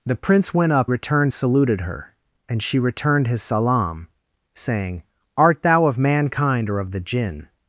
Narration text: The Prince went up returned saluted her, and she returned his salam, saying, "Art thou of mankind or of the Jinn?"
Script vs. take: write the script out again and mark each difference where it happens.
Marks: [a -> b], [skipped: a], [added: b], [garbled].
The Prince went up returned saluted her, and she returned his salam, saying, "Art thou of mankind or of the Jinn?"